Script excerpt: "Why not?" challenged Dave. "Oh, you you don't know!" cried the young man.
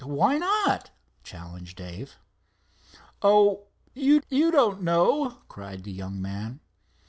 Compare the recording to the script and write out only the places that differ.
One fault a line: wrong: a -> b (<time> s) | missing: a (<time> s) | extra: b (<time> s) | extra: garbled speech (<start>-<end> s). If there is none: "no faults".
no faults